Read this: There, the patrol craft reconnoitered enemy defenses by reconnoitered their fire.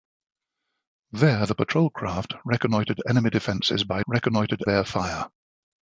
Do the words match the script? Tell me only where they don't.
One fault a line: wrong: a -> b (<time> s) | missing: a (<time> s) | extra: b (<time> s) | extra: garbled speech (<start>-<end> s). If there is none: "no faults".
no faults